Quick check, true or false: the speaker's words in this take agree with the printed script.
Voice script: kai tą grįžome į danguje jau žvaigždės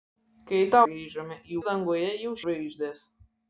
true